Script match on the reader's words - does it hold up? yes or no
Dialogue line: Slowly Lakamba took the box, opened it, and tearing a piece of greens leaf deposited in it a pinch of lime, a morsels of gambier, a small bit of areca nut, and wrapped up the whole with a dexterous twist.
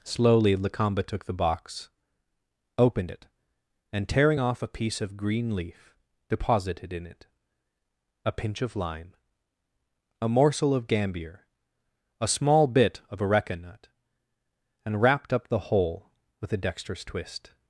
no